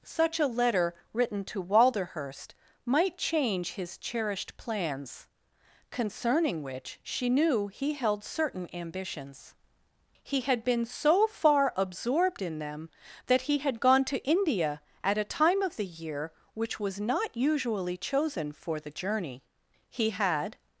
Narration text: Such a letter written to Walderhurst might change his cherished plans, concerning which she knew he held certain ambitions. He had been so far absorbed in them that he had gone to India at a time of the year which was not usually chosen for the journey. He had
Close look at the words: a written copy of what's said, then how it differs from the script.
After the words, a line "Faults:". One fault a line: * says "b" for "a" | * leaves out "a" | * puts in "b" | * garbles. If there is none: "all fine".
Such a letter written to Walderhurst might change his cherished plans, concerning which she knew he held certain ambitions. He had been so far absorbed in them that he had gone to India at a time of the year which was not usually chosen for the journey. He had
Faults:
all fine